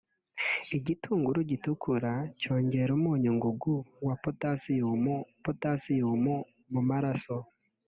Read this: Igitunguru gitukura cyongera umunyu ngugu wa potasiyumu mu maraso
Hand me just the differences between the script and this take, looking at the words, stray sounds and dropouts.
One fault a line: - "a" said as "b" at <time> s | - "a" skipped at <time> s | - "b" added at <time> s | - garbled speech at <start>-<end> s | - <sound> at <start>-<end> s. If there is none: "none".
- "potasiyumu" added at 5.4 s